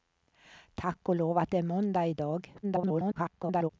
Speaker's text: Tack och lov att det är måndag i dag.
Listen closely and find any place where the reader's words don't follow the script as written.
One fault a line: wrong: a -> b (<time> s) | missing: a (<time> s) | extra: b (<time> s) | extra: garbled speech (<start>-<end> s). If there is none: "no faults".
extra: garbled speech (2.6-3.7 s)